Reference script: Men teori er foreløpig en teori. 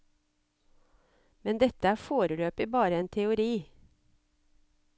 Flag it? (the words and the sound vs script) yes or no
yes